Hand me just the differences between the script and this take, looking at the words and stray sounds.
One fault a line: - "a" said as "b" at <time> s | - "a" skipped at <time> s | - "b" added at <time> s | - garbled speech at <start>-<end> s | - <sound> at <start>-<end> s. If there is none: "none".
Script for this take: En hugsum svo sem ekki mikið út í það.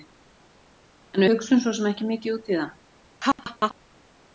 - laugh at 3.2-3.7 s